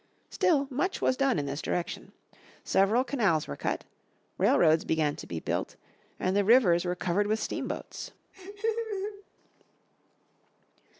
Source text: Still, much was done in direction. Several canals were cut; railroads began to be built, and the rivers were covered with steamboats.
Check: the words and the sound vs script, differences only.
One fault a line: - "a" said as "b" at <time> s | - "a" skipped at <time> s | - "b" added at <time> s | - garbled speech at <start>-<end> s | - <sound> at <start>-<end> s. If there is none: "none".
- "this" added at 1.4 s
- laugh at 8.3-9.2 s